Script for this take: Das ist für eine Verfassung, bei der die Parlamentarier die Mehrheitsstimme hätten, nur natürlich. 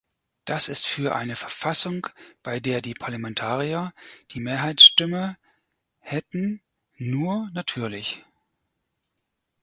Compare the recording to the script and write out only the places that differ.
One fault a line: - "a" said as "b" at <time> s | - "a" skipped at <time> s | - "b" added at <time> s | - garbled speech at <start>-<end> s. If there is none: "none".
none